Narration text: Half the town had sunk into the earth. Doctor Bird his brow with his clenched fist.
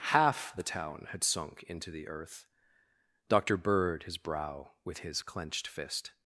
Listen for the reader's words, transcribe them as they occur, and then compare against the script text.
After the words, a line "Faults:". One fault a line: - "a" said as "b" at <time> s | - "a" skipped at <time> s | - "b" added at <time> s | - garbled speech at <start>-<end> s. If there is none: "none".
Half the town had sunk into the earth. Doctor Bird his brow with his clenched fist.
Faults:
none